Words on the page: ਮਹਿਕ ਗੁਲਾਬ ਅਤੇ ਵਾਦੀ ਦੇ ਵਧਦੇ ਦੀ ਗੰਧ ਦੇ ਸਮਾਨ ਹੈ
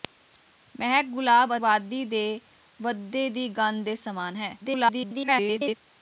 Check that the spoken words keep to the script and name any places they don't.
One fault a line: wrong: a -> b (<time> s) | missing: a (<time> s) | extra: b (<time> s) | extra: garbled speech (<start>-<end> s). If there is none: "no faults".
missing: ਅਤੇ (1.6 s)
extra: garbled speech (4.6-5.8 s)